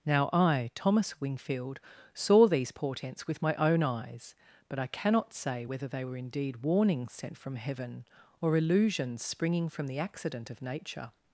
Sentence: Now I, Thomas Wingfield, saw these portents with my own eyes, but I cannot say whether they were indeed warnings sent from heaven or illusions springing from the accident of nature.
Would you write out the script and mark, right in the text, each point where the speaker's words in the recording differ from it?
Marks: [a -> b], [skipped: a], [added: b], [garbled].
Now I, Thomas Wingfield, saw these portents with my own eyes, but I cannot say whether they were indeed warnings sent from heaven or illusions springing from the accident of nature.